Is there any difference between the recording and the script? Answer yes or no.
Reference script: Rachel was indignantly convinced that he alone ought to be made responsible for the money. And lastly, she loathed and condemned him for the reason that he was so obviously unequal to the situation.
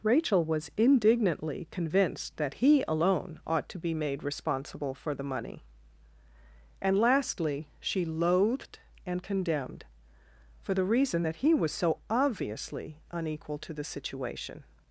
yes